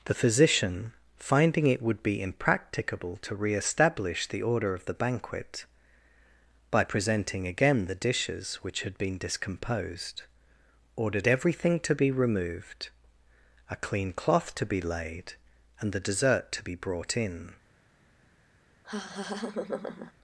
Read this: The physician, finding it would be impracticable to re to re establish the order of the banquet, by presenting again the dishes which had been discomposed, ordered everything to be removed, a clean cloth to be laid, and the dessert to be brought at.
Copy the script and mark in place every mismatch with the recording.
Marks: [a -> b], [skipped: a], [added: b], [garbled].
The physician, finding it would be impracticable to re [skipped: to re] establish the order of the banquet, by presenting again the dishes which had been discomposed, ordered everything to be removed, a clean cloth to be laid, and the dessert to be brought [at. -> in]